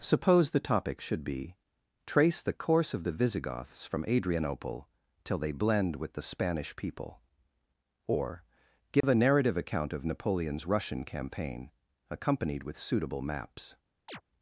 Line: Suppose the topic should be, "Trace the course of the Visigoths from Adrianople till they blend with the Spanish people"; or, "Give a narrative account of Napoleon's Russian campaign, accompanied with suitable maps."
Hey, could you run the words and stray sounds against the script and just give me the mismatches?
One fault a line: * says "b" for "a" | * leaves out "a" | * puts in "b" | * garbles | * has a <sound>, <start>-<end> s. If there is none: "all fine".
* has a dropout, 9.0-9.0 s
* has a chirp, 14.1-14.2 s